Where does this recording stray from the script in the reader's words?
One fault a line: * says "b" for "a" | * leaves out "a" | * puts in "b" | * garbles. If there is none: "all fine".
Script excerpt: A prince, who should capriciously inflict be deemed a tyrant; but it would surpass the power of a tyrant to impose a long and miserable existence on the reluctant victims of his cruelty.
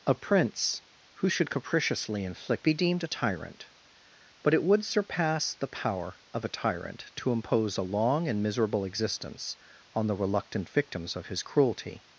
all fine